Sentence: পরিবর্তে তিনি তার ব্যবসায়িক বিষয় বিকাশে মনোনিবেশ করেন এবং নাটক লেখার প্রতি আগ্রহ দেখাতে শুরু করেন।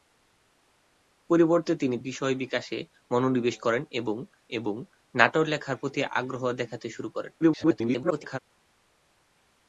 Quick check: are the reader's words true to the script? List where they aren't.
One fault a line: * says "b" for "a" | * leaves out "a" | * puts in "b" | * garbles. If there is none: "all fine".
* leaves out "তার ব্যবসায়িক"
* puts in "এবং"
* garbles